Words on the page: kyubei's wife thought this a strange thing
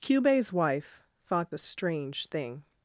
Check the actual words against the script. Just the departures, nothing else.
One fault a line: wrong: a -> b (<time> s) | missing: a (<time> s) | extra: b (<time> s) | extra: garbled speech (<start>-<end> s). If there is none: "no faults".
missing: this (1.5 s)